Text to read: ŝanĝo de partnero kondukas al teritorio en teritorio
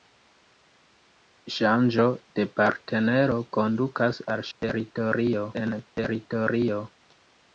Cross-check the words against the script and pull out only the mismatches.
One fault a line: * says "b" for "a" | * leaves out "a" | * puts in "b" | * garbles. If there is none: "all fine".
all fine